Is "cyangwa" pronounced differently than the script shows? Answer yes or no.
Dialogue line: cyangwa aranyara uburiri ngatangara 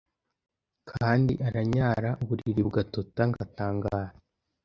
yes